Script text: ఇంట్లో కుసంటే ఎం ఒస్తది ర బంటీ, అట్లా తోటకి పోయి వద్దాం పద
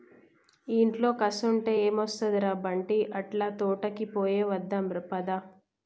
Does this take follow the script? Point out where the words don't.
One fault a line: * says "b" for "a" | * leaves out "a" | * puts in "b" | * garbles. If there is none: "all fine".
all fine